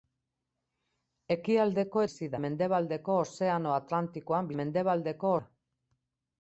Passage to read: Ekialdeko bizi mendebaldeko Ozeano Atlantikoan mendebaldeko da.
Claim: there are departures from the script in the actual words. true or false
false